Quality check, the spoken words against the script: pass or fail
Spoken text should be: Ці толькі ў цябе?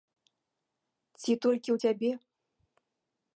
pass